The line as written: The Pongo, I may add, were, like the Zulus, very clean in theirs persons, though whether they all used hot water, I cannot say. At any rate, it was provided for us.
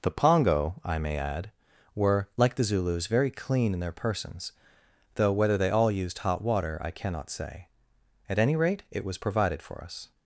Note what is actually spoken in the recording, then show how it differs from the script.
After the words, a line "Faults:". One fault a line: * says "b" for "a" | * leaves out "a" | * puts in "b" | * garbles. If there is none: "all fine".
The Pongo, I may add, were, like the Zulus, very clean in their persons, though whether they all used hot water, I cannot say. At any rate, it was provided for us.
Faults:
* says "their" for "theirs"